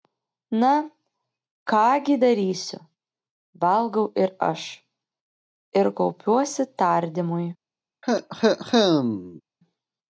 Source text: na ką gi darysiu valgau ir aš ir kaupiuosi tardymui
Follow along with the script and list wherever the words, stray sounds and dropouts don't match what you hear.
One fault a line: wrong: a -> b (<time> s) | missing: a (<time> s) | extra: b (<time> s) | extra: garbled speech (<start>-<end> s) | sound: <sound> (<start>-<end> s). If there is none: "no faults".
sound: cough (8.0-9.4 s)